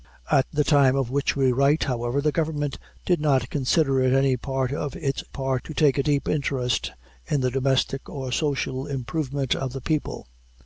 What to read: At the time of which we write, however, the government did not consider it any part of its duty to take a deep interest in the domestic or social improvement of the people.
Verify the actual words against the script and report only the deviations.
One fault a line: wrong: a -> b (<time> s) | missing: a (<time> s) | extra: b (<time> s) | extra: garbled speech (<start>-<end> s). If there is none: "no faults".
wrong: duty -> part (5.3 s)